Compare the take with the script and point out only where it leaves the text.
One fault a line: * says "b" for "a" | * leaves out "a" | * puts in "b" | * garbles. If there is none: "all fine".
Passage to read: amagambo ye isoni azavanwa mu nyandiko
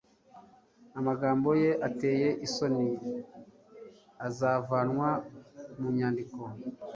* puts in "ateye"